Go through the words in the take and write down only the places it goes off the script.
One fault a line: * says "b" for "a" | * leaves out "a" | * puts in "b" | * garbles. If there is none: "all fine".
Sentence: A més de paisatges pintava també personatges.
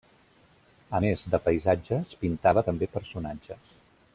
all fine